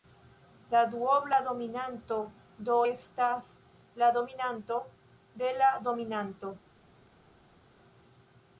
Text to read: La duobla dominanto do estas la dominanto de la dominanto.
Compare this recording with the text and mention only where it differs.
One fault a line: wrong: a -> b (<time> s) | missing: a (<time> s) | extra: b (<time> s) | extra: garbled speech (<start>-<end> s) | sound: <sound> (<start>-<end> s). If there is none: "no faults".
no faults